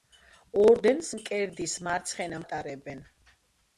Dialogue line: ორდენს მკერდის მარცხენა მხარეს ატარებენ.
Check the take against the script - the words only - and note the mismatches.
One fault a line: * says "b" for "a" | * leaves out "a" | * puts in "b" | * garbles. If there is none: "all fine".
* leaves out "მხარეს"